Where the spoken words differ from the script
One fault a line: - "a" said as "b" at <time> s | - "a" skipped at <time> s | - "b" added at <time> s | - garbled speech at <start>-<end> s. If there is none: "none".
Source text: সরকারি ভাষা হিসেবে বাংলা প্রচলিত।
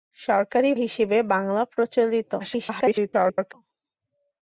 - "ভাষা" skipped at 0.7 s
- garbled speech at 2.4-3.5 s